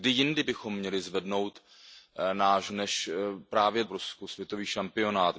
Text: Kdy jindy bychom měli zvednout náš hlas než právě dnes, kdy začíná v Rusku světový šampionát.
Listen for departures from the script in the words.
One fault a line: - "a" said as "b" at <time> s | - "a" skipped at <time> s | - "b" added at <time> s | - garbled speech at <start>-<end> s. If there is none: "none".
- "hlas" skipped at 2.7 s
- "dnes kdy začíná" skipped at 3.8 s